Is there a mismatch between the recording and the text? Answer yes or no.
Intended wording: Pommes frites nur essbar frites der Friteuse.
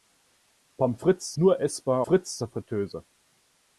no